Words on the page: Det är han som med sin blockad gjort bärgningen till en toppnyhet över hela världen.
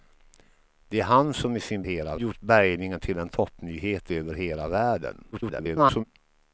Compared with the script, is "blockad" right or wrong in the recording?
wrong